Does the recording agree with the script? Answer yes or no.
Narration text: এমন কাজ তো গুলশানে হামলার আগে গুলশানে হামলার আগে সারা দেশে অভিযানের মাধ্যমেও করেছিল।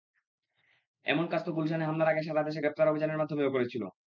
no